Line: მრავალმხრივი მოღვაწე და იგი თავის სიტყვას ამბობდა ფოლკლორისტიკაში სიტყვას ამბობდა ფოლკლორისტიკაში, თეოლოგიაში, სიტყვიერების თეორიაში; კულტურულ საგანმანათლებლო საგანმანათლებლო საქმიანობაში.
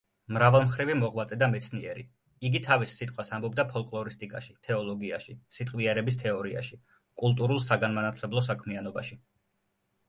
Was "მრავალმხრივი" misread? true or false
false